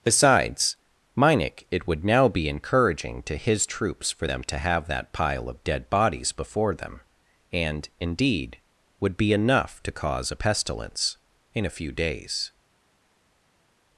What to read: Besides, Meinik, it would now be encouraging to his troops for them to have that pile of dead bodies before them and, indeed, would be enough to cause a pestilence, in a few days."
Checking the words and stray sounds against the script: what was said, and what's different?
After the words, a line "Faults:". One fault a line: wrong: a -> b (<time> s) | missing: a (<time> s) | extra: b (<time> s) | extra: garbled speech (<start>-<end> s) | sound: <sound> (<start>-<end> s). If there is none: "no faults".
Besides, Meinik, it would now be encouraging to his troops for them to have that pile of dead bodies before them and, indeed, would be enough to cause a pestilence, in a few days."
Faults:
no faults